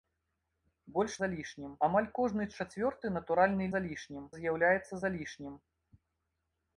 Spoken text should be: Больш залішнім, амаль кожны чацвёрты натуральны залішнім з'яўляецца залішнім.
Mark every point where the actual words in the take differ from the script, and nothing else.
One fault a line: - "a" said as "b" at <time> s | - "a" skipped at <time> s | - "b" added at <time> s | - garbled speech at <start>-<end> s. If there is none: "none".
none